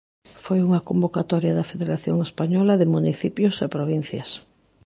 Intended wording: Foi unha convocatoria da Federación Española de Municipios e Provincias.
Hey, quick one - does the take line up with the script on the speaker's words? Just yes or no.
yes